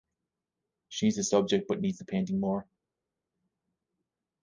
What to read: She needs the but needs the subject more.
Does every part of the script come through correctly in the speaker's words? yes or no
no